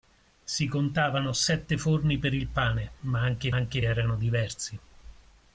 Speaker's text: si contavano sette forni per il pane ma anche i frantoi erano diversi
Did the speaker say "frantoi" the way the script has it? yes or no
no